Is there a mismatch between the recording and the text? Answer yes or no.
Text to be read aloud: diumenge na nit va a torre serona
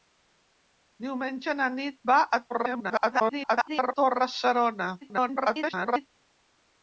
yes